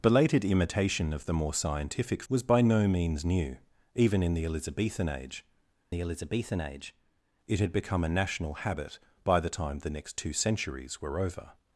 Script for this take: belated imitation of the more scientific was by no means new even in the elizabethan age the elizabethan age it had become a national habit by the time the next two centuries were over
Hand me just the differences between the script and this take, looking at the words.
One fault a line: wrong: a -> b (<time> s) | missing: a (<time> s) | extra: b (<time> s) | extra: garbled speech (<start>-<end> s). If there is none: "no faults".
no faults